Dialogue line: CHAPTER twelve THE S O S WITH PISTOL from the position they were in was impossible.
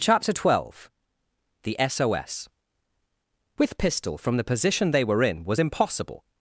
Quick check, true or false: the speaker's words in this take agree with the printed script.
true